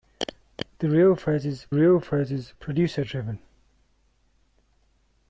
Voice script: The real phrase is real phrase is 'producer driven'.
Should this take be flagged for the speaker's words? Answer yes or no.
no